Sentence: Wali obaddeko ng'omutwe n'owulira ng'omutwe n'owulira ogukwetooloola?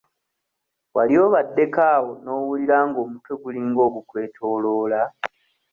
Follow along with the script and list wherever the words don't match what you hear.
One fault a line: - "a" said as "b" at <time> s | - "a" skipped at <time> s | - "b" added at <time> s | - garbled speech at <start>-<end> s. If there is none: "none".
- "ng'omutwe" said as "awo" at 1.9 s
- "n'owulira" said as "gulinga" at 3.4 s